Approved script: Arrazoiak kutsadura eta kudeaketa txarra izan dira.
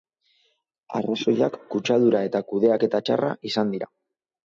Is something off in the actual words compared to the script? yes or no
no